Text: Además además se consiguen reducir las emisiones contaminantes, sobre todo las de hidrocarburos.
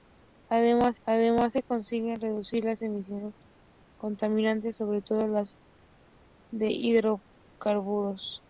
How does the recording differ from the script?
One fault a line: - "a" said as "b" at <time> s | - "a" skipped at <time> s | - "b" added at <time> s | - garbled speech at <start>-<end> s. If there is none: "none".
none